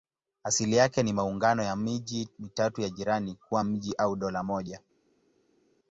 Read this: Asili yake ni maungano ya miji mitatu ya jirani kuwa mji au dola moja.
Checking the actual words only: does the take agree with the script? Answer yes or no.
yes